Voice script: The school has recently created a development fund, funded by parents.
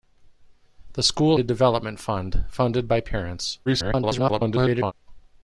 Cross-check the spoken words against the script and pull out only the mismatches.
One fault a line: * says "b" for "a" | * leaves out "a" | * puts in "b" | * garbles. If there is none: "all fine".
* leaves out "has recently created"
* garbles